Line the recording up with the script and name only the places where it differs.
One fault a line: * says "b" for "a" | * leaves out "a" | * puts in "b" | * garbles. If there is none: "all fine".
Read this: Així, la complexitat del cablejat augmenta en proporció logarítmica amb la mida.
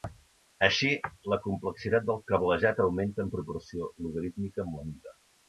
all fine